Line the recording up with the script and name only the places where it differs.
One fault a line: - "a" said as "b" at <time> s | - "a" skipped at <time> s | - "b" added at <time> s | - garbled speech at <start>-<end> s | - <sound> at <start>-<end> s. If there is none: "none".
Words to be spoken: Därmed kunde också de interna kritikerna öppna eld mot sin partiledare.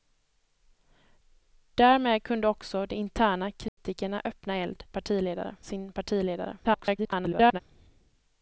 - dropout at 3.7-3.8 s
- "mot" said as "partiledare" at 4.9 s
- garbled speech at 6.6-7.6 s